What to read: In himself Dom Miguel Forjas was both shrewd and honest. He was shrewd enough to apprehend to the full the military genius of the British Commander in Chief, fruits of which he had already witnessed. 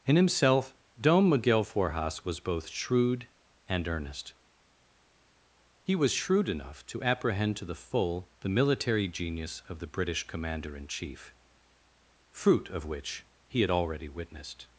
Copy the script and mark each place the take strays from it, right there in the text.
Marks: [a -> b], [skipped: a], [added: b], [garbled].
In himself Dom Miguel Forjas was both shrewd and [honest. -> earnest] He was shrewd enough to apprehend to the full the military genius of the British Commander in Chief, [fruits -> fruit] of which he had already witnessed.